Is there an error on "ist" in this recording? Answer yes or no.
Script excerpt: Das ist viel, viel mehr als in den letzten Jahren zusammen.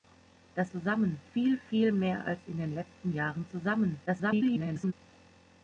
yes